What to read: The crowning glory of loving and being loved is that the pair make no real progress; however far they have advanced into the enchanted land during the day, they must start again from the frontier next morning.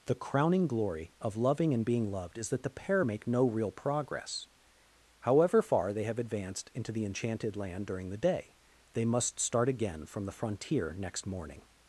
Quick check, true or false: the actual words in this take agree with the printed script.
true